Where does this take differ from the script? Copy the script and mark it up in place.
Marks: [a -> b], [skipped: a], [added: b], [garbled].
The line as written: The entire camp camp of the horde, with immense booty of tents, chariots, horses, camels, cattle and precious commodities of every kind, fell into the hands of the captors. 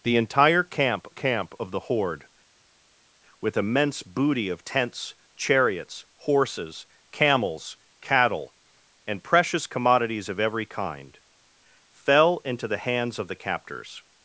The entire camp camp of the horde, with immense booty of tents, chariots, horses, camels, cattle and precious commodities of every kind, fell into the hands of the captors.